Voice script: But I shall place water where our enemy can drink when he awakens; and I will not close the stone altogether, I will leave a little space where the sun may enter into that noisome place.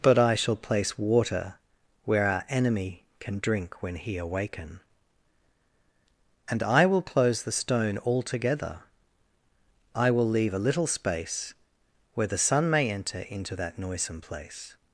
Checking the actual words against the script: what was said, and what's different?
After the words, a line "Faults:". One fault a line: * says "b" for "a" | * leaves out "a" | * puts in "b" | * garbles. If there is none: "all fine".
But I shall place water where our enemy can drink when he awaken; and I will close the stone altogether, I will leave a little space where the sun may enter into that noisome place.
Faults:
* says "awaken" for "awakens"
* leaves out "not"